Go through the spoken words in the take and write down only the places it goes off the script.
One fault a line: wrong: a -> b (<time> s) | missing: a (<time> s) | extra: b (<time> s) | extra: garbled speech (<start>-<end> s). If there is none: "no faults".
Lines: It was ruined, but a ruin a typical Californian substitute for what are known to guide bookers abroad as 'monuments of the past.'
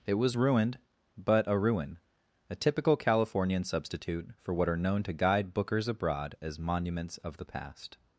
no faults